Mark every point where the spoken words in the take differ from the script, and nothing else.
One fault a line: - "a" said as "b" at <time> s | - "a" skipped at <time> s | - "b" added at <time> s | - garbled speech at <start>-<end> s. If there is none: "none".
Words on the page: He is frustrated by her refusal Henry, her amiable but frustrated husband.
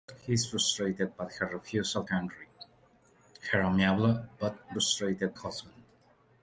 none